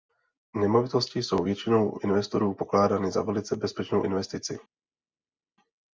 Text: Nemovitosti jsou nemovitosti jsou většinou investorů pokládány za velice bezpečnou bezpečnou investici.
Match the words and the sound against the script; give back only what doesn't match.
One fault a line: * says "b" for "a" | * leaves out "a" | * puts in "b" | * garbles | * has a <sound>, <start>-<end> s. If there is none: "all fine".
* leaves out "nemovitosti jsou"
* leaves out "bezpečnou"